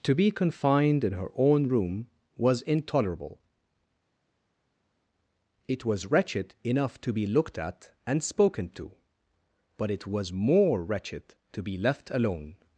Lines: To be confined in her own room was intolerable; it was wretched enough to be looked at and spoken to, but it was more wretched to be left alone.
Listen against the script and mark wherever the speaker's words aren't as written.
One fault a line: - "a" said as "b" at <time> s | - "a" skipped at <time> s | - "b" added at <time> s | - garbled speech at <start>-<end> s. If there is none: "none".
none